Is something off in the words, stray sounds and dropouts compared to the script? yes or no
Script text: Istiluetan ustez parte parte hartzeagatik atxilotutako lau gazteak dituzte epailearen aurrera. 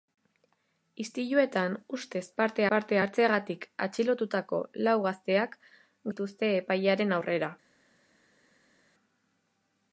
no